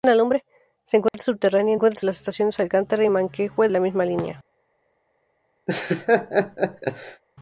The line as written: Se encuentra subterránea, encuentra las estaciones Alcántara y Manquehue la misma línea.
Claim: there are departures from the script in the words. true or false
false